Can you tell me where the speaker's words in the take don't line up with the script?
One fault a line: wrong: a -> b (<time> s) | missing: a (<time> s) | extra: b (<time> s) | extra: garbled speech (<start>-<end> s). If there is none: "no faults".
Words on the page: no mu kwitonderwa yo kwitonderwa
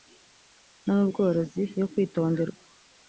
wrong: kwitonderwa -> bworozi (1.1 s)